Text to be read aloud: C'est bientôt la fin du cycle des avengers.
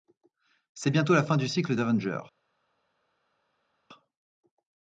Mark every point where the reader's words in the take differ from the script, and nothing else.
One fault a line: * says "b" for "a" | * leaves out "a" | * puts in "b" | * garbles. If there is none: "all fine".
* leaves out "des"